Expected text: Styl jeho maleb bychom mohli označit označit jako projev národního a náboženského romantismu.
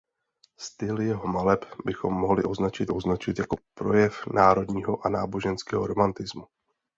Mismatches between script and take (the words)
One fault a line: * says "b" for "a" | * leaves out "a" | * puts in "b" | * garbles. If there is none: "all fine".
all fine